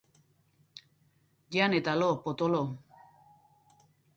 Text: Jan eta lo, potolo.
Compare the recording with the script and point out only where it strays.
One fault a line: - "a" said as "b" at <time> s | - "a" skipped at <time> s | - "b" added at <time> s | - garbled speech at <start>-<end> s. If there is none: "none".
none